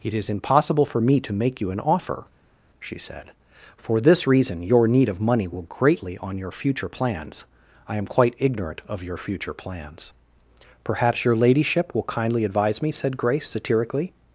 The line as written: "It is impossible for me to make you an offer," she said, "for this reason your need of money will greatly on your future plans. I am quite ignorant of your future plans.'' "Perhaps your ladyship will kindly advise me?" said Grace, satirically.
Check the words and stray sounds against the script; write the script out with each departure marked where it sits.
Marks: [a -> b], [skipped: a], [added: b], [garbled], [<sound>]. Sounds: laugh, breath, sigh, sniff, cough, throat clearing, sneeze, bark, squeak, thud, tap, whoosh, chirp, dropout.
"It is impossible for me to make you an offer," she said, "for this reason your need of money will greatly on your future plans. I am quite ignorant of your future plans.'' "Perhaps your ladyship will kindly advise me?" said Grace, satirically.